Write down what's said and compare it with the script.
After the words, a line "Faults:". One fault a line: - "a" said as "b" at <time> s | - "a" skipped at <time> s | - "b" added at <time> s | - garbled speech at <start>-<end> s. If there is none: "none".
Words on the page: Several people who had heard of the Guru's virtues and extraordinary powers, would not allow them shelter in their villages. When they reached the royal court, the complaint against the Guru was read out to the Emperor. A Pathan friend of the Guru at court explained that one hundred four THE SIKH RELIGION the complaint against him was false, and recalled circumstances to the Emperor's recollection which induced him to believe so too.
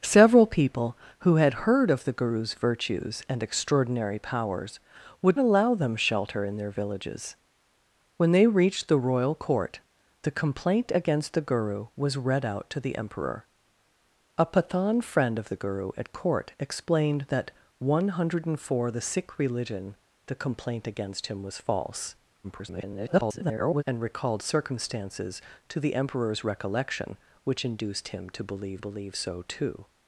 Several people who had heard of the Guru's virtues and extraordinary powers, would allow them shelter in their villages. When they reached the royal court, the complaint against the Guru was read out to the Emperor. A Pathan friend of the Guru at court explained that one hundred four THE SIKH RELIGION the complaint against him was false, [garbled] and recalled circumstances to the Emperor's recollection which induced him to believe believe so too.
Faults:
- "not" skipped at 5.4 s
- garbled speech at 22.4-23.8 s
- "believe" added at 28.8 s